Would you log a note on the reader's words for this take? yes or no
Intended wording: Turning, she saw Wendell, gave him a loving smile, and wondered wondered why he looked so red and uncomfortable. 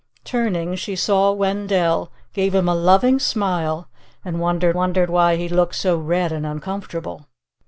no